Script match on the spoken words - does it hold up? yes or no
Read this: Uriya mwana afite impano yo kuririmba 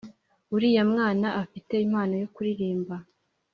yes